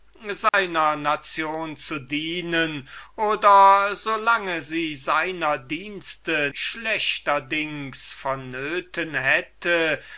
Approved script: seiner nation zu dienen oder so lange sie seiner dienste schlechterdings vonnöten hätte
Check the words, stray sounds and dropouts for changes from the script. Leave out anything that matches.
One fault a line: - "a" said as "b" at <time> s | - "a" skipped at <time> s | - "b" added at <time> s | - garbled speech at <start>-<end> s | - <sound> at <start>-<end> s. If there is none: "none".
- dropout at 0.5-0.5 s